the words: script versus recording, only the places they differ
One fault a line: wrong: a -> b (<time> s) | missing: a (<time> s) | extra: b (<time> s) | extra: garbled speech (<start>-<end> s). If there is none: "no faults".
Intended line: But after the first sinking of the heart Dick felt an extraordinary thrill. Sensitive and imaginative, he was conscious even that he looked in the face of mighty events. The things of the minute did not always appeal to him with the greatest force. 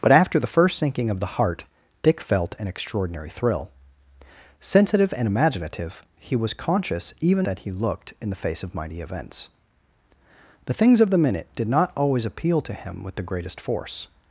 no faults